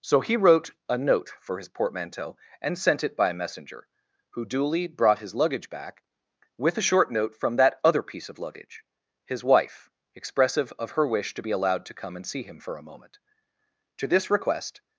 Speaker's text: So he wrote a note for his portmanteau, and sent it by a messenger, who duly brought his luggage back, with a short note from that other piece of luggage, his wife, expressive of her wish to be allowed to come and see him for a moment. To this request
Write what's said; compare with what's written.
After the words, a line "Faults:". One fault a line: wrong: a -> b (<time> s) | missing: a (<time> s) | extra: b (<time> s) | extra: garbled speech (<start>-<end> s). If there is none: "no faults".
So he wrote a note for his portmanteau, and sent it by a messenger, who duly brought his luggage back, with a short note from that other piece of luggage, his wife, expressive of her wish to be allowed to come and see him for a moment. To this request
Faults:
no faults